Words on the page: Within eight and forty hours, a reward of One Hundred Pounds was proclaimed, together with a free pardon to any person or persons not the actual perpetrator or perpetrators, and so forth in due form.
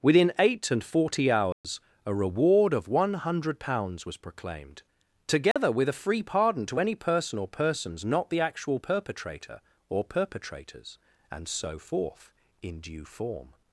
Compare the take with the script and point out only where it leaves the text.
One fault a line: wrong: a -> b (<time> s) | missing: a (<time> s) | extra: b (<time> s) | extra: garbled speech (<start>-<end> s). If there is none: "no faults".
no faults